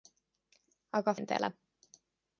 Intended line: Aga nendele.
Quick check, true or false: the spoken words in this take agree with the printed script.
true